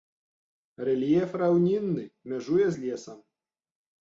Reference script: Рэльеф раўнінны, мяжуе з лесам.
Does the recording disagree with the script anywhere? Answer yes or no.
no